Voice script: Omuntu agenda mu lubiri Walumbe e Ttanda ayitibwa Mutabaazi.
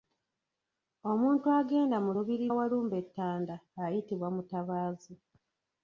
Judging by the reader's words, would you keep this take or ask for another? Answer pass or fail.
pass